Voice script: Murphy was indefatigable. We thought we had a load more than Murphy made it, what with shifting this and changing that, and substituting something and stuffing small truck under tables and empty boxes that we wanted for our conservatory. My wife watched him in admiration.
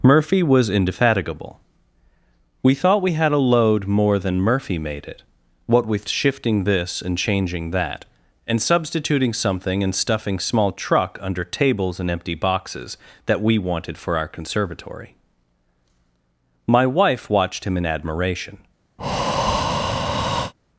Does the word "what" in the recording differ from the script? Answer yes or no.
no